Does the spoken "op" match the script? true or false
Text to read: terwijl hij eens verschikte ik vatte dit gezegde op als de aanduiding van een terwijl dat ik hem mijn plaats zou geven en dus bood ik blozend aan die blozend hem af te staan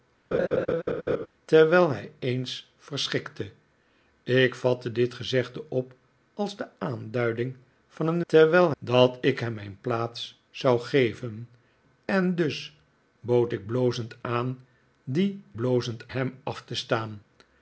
true